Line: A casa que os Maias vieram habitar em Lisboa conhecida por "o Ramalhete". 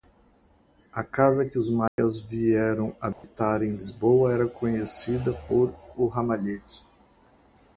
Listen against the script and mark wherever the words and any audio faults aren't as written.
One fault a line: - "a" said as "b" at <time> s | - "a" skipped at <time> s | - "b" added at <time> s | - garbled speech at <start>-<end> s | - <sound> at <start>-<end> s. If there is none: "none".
- dropout at 1.9-2.0 s
- dropout at 3.1-3.2 s
- "era" added at 4.3 s